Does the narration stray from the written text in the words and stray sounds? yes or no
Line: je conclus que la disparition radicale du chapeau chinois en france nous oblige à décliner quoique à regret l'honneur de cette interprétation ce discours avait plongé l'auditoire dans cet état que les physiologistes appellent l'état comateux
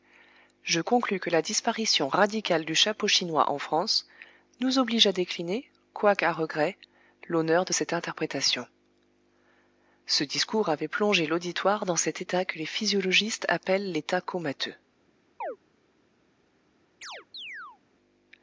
yes